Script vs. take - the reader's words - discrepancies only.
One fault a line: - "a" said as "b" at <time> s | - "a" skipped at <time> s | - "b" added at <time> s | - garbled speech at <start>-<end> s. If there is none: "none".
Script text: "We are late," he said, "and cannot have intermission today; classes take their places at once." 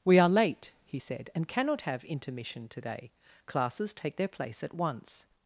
- "places" said as "place" at 4.3 s